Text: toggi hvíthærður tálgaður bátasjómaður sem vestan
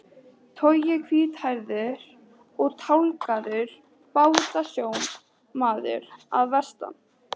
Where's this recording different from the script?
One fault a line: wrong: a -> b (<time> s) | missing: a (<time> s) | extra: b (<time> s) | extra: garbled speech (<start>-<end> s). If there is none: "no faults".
extra: og (2.6 s)
wrong: sem -> að (6.4 s)